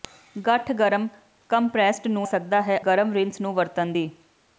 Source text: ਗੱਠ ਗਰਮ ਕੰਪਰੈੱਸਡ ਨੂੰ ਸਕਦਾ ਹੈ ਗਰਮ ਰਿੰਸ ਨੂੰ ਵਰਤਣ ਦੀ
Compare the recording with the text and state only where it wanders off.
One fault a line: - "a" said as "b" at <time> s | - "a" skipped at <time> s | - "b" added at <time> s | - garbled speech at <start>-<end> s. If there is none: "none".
none